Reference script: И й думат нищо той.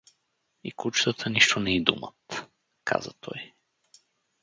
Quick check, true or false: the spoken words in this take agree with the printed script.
false